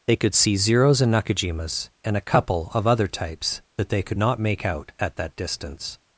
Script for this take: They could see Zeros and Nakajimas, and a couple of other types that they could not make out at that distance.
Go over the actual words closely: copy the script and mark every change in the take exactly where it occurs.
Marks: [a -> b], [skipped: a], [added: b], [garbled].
They could see Zeros and Nakajimas, and a couple of other types that they could not make out at that distance.